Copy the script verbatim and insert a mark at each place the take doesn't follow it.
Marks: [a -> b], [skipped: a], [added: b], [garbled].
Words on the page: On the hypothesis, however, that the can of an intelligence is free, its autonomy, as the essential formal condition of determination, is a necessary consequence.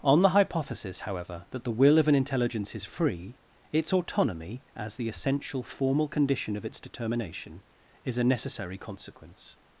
On the hypothesis, however, that the [can -> will] of an intelligence is free, its autonomy, as the essential formal condition of [added: its] determination, is a necessary consequence.